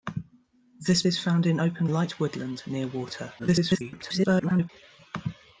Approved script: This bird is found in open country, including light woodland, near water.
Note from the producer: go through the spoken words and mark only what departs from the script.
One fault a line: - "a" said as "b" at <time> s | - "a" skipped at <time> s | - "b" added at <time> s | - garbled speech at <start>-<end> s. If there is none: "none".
- "bird" skipped at 1.0 s
- "country including" skipped at 1.9 s
- garbled speech at 3.4-4.7 s